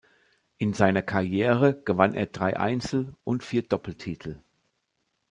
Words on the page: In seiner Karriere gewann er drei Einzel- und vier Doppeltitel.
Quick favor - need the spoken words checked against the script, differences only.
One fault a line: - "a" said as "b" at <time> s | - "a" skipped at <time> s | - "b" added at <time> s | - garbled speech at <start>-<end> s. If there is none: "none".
none